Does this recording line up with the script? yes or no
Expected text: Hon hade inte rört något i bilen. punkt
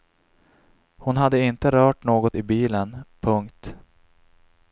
yes